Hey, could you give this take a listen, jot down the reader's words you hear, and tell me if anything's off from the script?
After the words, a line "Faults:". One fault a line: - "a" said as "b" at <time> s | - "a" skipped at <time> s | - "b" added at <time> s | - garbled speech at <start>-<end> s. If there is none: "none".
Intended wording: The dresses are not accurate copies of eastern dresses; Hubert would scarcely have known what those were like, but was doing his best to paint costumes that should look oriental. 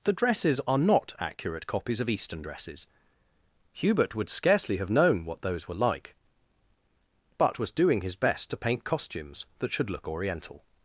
The dresses are not accurate copies of eastern dresses; Hubert would scarcely have known what those were like, but was doing his best to paint costumes that should look oriental.
Faults:
none